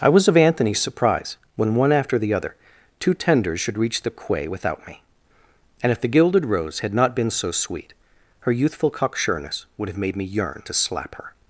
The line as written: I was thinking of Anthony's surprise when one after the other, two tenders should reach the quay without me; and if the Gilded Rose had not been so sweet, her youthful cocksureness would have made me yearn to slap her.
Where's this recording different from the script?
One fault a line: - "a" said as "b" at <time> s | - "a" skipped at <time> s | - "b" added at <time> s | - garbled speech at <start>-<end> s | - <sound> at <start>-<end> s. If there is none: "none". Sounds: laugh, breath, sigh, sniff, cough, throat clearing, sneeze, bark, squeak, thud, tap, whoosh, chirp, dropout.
- "thinking" skipped at 0.3 s